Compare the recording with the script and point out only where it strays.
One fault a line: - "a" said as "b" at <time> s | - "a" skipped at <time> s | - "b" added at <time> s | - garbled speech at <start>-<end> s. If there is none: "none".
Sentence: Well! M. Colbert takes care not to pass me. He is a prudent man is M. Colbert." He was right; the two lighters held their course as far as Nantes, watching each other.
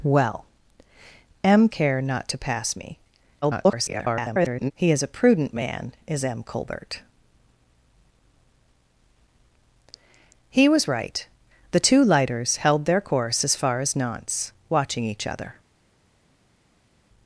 - "Colbert takes" skipped at 1.7 s
- garbled speech at 3.4-4.7 s